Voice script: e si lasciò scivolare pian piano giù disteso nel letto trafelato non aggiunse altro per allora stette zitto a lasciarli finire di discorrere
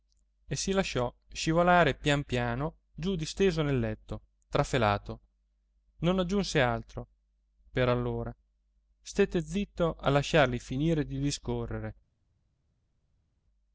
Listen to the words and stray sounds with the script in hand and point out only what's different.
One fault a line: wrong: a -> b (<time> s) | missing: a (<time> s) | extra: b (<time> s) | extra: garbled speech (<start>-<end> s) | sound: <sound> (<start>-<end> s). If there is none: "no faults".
no faults